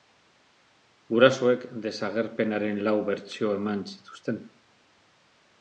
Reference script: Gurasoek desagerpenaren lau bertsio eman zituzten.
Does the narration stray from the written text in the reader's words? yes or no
no